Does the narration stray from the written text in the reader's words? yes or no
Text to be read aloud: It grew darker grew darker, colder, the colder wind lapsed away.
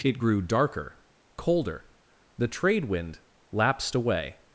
yes